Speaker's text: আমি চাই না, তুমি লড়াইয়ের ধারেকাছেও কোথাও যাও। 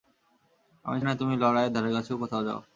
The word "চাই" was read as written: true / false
false